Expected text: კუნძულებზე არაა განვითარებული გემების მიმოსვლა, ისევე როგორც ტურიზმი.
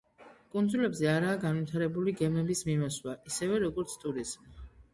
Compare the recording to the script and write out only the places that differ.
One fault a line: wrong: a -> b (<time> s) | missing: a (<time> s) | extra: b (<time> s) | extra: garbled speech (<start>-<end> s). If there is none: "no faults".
no faults